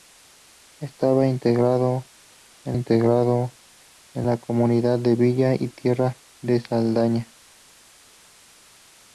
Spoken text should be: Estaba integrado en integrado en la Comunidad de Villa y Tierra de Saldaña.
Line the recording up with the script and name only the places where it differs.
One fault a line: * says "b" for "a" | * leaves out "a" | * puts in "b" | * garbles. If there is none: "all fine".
all fine